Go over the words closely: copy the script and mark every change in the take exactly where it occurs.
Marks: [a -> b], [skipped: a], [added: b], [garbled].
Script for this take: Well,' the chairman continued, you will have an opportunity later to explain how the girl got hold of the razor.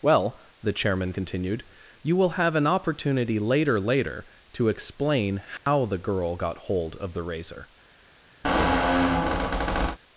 Well,' the chairman continued, you will have an opportunity later [added: later] to explain how the girl got hold of the razor.